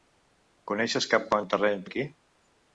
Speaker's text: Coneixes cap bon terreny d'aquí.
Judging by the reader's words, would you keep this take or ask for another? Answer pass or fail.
pass